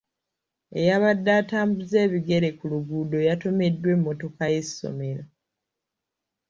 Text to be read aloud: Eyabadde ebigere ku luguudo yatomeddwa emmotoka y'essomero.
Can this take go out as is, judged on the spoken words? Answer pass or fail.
fail